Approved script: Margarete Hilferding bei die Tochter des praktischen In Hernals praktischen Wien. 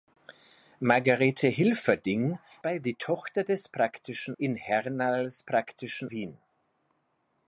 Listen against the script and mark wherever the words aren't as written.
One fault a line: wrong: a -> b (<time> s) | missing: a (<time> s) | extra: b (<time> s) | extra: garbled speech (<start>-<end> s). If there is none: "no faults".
no faults